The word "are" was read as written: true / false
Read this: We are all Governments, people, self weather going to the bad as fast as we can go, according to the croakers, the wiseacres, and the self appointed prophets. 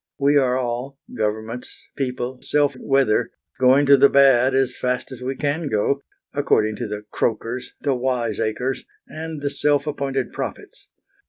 true